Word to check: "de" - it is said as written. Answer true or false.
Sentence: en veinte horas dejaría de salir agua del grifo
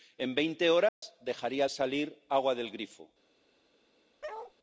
false